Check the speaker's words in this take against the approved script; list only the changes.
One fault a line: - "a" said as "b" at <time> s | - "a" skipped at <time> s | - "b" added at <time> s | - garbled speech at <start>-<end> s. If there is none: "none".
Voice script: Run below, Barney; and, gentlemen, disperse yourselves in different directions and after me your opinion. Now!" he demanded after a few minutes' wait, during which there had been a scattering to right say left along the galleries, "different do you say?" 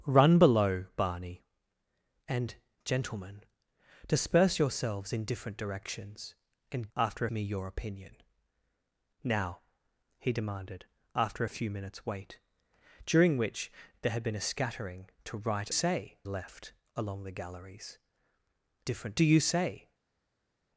none